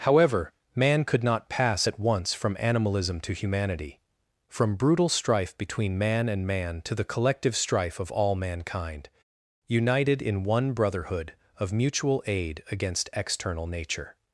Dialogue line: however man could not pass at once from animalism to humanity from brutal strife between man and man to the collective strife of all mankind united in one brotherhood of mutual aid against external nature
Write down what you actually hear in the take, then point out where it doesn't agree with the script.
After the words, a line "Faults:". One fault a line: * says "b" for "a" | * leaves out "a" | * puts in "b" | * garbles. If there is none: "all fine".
however man could not pass at once from animalism to humanity from brutal strife between man and man to the collective strife of all mankind united in one brotherhood of mutual aid against external nature
Faults:
all fine